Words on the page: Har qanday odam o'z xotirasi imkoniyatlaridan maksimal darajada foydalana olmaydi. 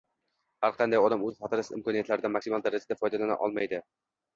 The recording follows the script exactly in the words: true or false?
true